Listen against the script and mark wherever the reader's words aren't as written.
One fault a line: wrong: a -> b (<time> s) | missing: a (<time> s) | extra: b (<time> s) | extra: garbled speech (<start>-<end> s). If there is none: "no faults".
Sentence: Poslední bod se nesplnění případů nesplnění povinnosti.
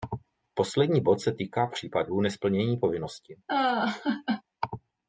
wrong: nesplnění -> týká (1.3 s)